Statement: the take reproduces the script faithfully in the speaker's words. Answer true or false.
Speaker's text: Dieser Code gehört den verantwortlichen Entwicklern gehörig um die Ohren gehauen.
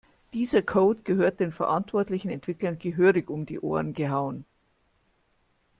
true